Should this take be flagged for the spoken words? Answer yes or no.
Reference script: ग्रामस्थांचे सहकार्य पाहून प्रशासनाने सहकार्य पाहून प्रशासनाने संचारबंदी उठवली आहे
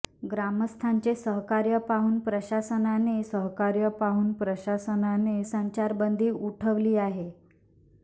no